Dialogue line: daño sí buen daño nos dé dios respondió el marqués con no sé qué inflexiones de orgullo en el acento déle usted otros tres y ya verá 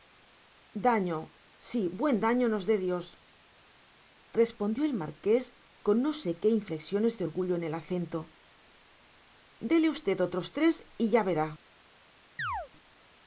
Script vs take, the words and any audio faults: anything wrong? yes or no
yes